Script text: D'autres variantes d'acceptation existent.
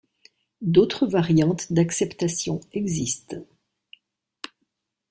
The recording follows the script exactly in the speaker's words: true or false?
true